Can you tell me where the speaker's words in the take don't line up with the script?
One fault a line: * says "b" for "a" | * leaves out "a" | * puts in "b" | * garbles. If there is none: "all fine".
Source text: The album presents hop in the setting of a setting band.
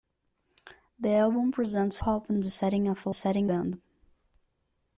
all fine